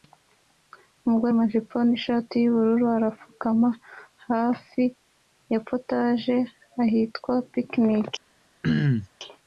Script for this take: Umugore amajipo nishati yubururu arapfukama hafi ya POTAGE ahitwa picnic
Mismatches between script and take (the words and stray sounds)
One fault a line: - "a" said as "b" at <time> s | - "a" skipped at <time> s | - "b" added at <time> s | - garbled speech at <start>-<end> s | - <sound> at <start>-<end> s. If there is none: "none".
- throat clearing at 8.6-9.1 s